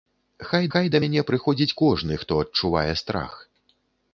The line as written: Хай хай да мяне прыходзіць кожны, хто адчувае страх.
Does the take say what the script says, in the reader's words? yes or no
yes